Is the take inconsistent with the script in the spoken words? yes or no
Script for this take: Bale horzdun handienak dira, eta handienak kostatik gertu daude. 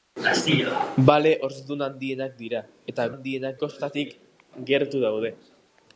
no